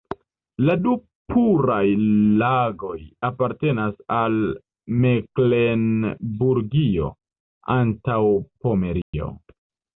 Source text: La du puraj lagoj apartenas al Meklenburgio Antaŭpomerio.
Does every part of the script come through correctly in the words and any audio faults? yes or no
no